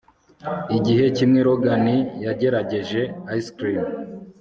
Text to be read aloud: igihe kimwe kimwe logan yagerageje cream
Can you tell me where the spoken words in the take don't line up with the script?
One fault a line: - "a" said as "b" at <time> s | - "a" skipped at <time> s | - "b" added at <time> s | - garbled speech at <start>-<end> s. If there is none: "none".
- "kimwe" skipped at 1.4 s
- "ice" added at 3.4 s